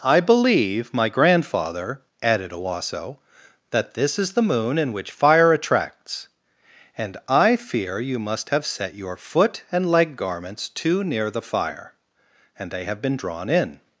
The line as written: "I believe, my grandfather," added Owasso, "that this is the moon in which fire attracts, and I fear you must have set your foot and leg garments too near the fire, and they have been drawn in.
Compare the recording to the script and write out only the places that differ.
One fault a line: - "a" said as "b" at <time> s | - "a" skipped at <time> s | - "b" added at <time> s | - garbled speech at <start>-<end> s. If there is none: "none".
none